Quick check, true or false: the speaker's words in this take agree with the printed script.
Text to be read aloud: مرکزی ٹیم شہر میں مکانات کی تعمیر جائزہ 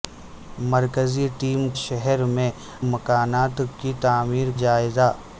true